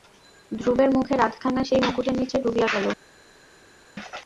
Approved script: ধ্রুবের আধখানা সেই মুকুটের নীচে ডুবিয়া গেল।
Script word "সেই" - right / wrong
right